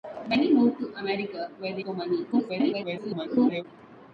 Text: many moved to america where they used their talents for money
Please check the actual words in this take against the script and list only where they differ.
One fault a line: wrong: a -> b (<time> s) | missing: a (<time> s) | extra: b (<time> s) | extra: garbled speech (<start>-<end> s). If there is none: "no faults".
missing: used their talents (1.8 s)
extra: garbled speech (2.3-3.7 s)